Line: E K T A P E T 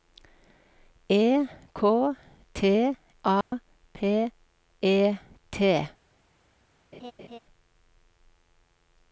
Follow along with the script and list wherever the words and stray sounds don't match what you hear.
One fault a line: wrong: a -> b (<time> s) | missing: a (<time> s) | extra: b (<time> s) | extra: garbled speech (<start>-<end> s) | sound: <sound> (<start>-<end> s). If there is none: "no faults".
sound: dropout (3.4-3.5 s)
sound: laugh (6.9-7.4 s)